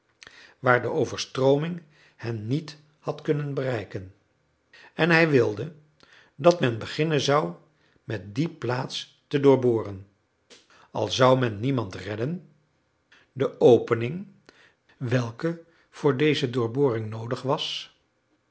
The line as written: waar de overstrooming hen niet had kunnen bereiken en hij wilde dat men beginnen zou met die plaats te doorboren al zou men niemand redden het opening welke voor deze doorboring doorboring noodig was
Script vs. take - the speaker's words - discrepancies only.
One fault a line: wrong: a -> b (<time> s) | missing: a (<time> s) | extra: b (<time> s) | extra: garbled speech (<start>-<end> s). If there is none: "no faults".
wrong: het -> de (13.3 s)
missing: doorboring (17.1 s)